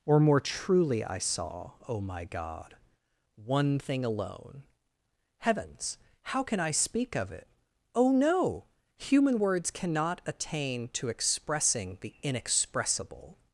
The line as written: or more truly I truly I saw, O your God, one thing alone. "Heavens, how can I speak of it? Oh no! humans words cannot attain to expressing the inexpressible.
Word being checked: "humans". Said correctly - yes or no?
no